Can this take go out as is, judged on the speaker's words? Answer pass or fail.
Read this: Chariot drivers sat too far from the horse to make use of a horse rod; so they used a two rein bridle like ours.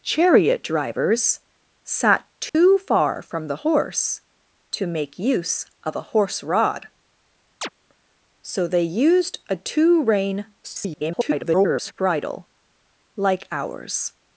fail